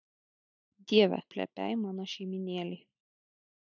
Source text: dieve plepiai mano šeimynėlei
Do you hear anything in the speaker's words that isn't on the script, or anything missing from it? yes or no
no